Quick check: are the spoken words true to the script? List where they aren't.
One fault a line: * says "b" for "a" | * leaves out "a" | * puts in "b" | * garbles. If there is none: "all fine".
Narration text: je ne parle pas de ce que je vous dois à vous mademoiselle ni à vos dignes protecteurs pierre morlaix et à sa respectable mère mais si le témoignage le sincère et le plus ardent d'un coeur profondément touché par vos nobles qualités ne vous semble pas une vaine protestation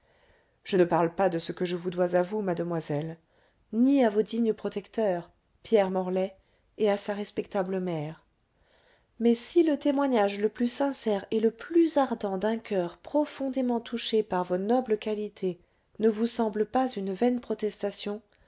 * puts in "plus"